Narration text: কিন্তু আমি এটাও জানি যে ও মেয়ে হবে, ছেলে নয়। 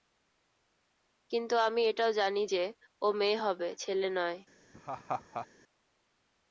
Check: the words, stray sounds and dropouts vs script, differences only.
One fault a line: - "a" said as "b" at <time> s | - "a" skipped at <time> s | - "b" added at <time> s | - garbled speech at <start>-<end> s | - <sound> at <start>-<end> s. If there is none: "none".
- laugh at 4.7-5.5 s